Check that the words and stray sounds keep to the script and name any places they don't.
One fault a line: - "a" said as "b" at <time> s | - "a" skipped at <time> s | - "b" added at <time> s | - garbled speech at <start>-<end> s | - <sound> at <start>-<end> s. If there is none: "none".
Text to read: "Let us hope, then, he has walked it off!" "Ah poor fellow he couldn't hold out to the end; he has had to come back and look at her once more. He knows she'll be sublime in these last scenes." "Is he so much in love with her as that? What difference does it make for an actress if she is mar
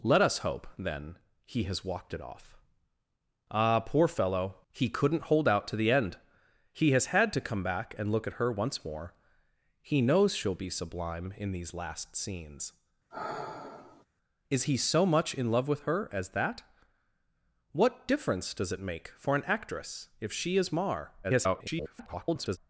- sigh at 13.1-14.1 s
- garbled speech at 21.2-22.6 s